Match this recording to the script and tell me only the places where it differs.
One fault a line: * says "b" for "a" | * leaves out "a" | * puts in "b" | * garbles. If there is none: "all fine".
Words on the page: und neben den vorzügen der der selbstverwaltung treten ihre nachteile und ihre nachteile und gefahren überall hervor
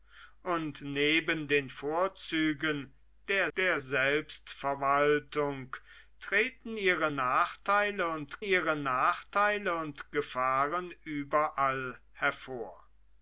all fine